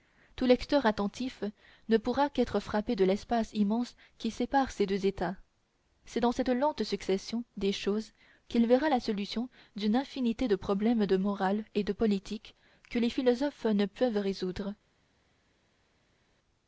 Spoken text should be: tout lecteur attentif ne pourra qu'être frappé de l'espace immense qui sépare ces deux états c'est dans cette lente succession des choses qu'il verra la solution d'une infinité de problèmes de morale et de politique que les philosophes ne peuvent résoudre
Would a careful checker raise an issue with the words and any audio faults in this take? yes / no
no